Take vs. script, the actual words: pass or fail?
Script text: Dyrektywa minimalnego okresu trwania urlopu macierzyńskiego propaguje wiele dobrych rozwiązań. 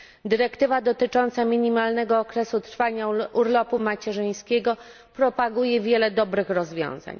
fail